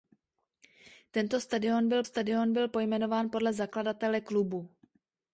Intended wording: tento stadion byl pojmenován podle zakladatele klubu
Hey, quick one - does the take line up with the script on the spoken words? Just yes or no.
no